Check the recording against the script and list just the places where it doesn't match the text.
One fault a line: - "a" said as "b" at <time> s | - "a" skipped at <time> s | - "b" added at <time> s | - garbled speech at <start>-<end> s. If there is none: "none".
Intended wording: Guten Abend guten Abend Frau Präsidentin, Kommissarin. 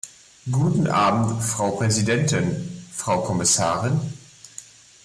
- "guten Abend" said as "Frau Präsidentin" at 1.4 s
- "Präsidentin" skipped at 3.2 s